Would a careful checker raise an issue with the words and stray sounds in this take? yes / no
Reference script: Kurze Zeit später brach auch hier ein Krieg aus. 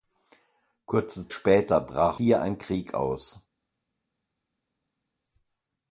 yes